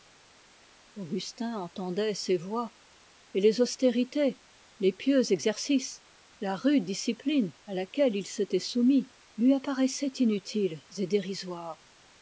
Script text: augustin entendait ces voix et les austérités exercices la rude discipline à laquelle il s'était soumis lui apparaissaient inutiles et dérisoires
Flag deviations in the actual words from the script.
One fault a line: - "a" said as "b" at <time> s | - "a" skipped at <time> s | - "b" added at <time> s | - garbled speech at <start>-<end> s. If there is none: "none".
- "les pieux" added at 4.8 s